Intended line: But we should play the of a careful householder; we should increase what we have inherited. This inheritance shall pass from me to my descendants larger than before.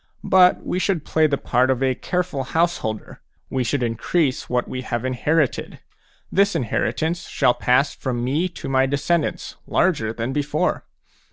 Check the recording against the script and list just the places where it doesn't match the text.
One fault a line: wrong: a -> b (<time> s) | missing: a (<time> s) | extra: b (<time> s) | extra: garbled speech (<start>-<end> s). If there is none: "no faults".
extra: part (1.4 s)